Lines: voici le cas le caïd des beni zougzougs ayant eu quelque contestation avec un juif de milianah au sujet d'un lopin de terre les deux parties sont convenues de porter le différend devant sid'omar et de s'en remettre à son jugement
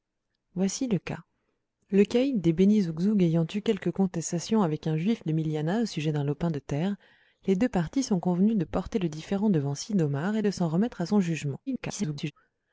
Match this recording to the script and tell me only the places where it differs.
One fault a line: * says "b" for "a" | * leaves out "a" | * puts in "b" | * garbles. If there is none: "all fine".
* garbles